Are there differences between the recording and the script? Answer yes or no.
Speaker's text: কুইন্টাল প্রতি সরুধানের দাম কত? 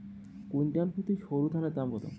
no